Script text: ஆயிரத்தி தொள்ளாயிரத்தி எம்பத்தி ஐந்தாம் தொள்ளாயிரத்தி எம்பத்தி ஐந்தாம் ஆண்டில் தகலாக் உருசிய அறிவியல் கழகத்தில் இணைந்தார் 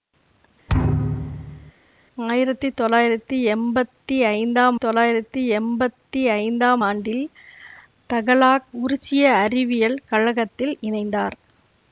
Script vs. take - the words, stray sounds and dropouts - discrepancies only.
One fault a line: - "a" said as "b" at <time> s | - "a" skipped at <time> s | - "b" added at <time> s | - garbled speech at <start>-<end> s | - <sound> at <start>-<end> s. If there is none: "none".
- thud at 0.7-1.7 s